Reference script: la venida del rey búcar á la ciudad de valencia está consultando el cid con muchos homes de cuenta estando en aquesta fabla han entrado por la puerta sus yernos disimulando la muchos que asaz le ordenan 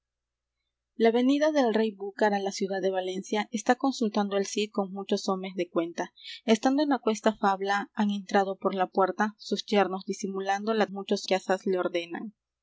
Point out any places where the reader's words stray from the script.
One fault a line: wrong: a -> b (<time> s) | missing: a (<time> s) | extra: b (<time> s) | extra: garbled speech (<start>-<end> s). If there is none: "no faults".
no faults